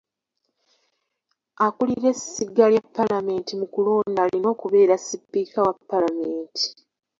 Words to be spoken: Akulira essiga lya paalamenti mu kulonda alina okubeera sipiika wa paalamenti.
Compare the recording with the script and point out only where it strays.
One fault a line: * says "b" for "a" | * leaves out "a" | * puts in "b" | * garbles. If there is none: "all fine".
all fine